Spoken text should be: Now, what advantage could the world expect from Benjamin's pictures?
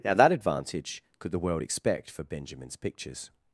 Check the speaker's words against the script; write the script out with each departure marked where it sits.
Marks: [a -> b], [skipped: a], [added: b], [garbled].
Now, [what -> that] advantage could the world expect [from -> for] Benjamin's pictures?